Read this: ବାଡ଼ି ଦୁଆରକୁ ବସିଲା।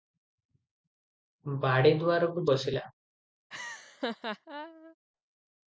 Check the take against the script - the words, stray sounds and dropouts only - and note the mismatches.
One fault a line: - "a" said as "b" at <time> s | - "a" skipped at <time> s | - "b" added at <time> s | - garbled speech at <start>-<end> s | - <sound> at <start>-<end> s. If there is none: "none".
- laugh at 3.5-5.0 s